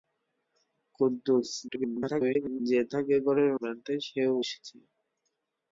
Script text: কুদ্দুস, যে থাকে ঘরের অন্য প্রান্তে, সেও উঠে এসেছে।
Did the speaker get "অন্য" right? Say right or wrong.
wrong